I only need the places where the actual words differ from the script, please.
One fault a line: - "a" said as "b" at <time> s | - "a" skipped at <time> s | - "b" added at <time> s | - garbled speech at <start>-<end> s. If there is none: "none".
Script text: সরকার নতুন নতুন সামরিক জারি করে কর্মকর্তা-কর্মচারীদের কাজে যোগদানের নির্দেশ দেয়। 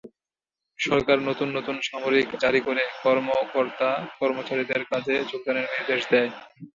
none